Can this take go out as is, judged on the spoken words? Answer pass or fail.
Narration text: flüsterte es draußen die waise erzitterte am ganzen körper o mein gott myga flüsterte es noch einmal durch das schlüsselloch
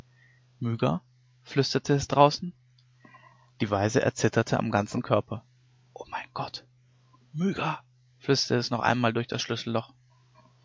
pass